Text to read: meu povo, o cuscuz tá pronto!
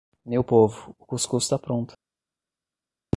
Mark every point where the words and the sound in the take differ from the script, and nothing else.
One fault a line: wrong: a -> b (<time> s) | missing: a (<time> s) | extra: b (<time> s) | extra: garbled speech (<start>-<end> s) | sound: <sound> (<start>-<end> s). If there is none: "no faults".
no faults